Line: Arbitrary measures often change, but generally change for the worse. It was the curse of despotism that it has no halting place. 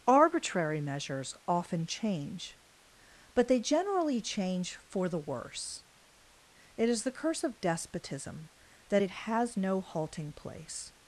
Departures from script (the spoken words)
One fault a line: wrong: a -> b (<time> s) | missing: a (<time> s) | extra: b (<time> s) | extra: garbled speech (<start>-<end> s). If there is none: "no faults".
extra: they (3.5 s)
wrong: was -> is (6.9 s)